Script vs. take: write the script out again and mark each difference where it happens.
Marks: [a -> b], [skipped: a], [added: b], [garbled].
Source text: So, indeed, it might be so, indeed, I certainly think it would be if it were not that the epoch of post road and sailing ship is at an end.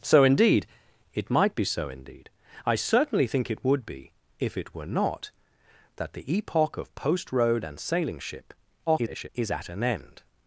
So, indeed, it might be so, indeed, I certainly think it would be if it were not that the epoch of post road and sailing ship [garbled] is at an end.